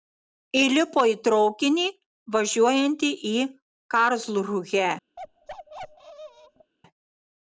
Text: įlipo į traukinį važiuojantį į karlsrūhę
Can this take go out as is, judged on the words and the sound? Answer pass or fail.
fail